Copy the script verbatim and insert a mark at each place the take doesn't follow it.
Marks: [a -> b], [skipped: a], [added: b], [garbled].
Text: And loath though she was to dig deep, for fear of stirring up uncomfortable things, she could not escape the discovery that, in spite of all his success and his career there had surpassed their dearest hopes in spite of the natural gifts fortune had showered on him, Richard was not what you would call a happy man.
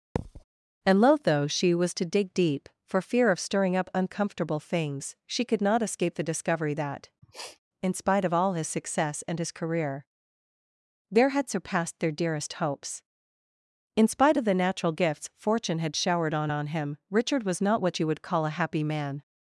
And loath though she was to dig deep, for fear of stirring up uncomfortable things, she could not escape the discovery that, in spite of all his success and his career there had surpassed their dearest hopes in spite of the natural gifts fortune had showered on [added: on] him, Richard was not what you would call a happy man.